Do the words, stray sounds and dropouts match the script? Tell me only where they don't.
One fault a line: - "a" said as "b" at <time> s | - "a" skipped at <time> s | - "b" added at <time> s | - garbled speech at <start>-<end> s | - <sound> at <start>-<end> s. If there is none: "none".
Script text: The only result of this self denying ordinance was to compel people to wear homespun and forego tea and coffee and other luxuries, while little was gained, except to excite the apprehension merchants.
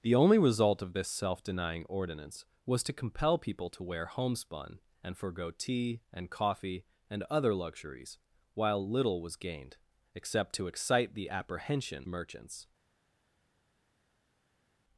none